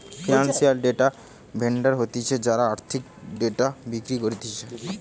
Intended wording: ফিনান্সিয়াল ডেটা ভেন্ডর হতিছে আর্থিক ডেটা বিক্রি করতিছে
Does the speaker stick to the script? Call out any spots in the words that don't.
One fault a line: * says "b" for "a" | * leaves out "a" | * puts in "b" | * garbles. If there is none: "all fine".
* puts in "যারা"